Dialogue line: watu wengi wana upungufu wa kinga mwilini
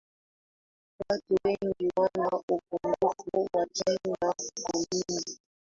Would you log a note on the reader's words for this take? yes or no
no